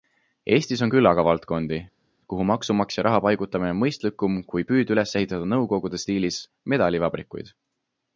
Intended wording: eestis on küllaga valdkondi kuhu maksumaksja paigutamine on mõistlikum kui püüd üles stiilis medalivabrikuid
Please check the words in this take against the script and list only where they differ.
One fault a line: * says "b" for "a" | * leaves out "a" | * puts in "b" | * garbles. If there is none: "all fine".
* puts in "raha"
* puts in "ehitada nõukogude"